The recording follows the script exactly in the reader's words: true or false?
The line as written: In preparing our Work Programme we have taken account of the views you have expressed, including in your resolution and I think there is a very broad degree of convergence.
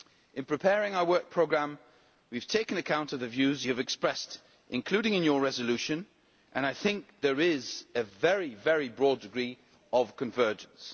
true